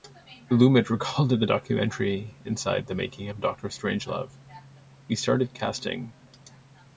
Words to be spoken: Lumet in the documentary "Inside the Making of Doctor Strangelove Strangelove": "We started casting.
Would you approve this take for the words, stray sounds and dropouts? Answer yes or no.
no